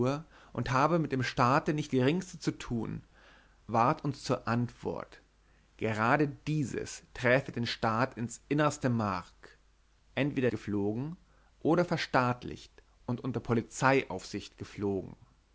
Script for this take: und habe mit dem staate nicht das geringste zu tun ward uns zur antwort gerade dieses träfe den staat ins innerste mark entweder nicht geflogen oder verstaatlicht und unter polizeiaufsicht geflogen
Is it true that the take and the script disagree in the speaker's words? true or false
true